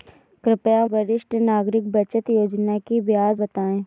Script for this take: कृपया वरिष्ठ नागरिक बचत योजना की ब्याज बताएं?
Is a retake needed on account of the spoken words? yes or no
no